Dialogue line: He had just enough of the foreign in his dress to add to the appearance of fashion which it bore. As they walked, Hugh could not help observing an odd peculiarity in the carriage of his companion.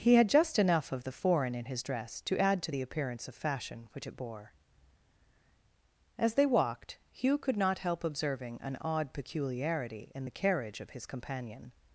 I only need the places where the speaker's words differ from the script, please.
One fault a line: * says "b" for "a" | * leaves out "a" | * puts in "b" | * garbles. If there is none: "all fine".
all fine